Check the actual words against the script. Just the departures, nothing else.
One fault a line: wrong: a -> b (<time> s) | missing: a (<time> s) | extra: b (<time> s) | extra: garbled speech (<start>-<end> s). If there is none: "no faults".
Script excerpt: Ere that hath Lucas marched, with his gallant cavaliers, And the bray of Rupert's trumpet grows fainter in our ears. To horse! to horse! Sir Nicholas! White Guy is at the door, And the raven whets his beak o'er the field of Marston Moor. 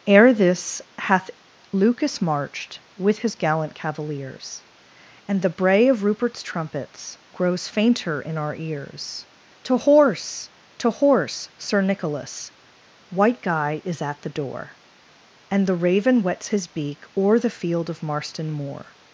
wrong: that -> this (0.3 s)
wrong: trumpet -> trumpets (6.4 s)